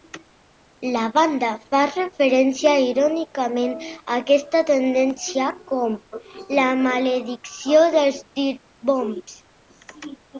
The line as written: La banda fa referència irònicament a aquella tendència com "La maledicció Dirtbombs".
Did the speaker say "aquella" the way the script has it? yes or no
no